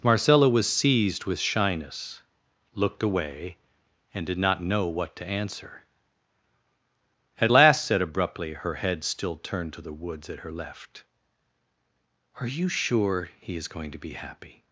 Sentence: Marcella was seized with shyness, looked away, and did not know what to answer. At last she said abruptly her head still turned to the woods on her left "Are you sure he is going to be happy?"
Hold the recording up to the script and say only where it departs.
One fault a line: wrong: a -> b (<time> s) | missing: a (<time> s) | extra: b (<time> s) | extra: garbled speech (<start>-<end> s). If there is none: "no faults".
missing: she (7.8 s)
wrong: on -> at (10.3 s)